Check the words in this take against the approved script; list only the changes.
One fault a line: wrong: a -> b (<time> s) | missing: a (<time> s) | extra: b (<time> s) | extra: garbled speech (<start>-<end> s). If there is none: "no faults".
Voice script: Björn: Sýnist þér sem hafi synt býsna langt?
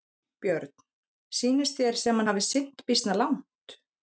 no faults